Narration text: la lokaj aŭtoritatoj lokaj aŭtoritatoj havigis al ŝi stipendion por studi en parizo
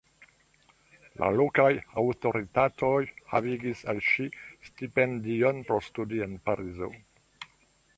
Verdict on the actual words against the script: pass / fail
fail